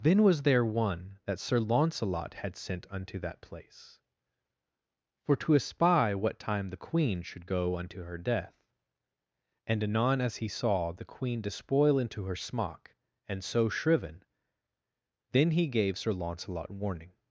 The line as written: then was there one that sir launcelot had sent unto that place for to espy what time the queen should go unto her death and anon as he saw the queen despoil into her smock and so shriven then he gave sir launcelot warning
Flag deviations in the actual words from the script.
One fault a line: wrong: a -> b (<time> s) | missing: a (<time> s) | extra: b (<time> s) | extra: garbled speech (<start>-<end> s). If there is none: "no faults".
no faults